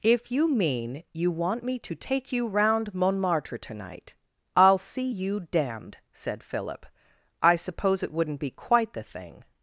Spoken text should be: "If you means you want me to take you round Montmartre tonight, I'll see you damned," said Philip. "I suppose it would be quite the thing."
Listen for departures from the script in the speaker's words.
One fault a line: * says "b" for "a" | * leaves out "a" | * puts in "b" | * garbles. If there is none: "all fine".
* says "mean" for "means"
* says "wouldn't" for "would"